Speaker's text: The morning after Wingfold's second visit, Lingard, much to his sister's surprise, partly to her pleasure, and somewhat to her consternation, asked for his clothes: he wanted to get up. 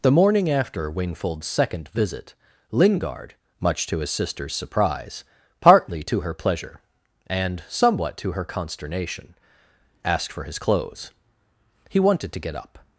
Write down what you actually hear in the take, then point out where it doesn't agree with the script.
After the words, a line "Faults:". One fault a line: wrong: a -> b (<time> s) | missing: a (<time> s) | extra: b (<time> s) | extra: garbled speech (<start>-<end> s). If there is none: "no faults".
The morning after Wingfold's second visit, Lingard, much to his sister's surprise, partly to her pleasure, and somewhat to her consternation, asked for his clothes: he wanted to get up.
Faults:
no faults